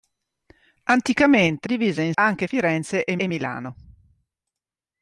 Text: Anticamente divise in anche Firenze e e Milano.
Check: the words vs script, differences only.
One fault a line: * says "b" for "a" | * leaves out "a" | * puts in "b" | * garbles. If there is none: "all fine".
all fine